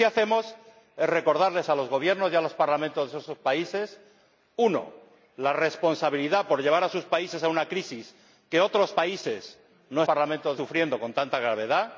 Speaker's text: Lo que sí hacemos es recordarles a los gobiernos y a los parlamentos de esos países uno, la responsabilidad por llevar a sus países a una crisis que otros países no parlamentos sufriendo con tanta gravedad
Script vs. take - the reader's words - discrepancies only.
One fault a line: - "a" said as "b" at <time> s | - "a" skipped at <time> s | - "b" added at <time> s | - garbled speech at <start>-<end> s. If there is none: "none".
none